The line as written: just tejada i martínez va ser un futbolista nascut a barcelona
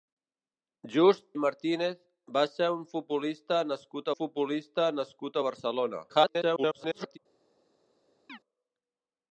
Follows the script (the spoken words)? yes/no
no